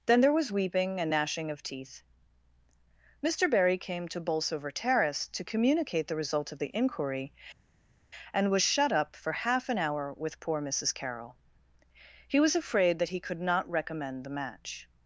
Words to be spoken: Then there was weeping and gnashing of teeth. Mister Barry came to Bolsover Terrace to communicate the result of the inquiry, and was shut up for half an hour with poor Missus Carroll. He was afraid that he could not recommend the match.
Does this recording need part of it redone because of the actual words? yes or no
no